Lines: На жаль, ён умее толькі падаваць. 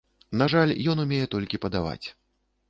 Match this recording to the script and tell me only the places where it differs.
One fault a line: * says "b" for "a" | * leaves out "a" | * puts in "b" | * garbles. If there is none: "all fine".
all fine